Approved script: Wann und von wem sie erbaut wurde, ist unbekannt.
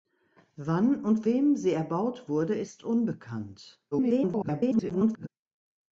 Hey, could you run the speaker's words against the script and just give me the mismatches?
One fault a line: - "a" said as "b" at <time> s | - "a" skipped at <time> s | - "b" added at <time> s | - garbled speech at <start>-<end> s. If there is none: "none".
- "von" skipped at 1.2 s
- garbled speech at 3.9-5.3 s